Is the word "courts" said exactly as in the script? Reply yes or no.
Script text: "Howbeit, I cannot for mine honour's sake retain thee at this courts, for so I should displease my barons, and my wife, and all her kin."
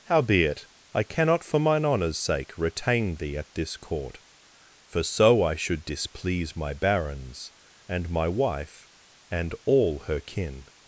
no